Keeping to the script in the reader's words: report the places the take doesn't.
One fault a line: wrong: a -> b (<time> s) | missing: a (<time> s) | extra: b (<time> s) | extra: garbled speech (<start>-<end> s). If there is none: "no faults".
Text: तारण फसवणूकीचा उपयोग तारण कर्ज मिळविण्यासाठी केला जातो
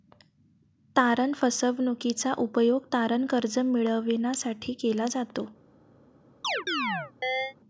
no faults